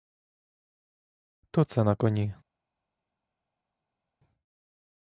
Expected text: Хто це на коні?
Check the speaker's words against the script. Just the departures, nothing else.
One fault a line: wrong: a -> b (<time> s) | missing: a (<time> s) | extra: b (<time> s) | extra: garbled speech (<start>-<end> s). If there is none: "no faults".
no faults